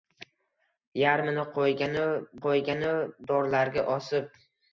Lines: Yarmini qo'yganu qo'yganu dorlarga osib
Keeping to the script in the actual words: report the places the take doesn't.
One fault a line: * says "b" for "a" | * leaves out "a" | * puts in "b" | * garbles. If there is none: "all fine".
all fine